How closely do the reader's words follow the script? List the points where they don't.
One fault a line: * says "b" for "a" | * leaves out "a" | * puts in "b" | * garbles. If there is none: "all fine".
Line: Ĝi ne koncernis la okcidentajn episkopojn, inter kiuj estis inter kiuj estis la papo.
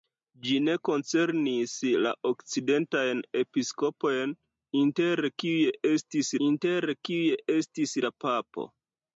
all fine